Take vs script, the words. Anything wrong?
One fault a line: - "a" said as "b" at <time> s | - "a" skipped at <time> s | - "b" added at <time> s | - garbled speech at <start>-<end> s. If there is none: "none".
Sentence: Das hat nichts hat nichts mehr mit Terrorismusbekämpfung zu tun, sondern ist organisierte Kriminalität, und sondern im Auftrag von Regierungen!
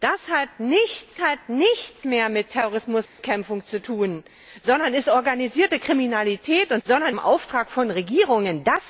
none